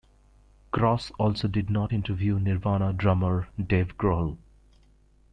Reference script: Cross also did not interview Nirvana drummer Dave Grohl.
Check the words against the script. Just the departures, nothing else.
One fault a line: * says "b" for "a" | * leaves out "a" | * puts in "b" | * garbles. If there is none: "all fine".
all fine